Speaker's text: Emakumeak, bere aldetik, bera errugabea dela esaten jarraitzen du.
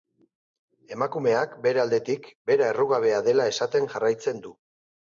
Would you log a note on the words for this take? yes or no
no